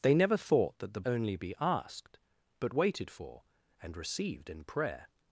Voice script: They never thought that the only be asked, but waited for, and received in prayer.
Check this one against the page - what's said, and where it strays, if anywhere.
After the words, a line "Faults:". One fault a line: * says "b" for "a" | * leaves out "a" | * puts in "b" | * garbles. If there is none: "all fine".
They never thought that the only be asked, but waited for, and received in prayer.
Faults:
all fine